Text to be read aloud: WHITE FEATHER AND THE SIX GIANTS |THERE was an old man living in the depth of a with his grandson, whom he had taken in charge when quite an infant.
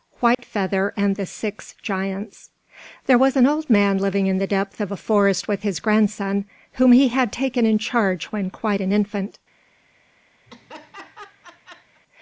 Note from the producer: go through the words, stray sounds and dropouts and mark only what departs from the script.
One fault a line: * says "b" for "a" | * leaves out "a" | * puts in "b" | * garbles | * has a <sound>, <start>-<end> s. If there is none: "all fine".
* has a dropout, 0.3-0.4 s
* puts in "forest"
* has a laugh, 10.5-12.0 s